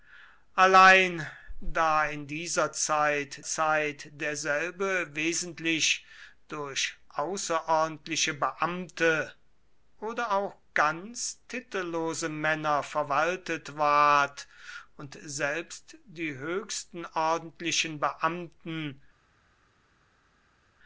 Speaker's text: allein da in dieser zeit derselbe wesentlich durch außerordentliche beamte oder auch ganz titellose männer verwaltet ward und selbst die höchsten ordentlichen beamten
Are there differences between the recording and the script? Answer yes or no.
yes